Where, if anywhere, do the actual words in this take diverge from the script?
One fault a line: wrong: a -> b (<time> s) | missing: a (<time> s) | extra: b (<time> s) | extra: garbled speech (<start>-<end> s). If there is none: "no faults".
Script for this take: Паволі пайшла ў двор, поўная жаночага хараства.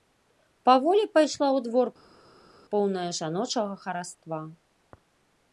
no faults